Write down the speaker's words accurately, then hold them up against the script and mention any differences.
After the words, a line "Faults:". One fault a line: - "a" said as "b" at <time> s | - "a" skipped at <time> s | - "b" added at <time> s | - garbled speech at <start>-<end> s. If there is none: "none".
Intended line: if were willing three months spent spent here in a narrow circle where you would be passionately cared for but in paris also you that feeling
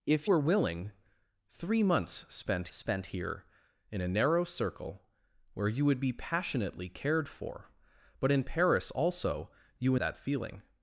if were willing three months spent spent here in a narrow circle where you would be passionately cared for but in paris also you that feeling
Faults:
none